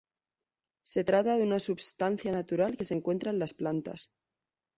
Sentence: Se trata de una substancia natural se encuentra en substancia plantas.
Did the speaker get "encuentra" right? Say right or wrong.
right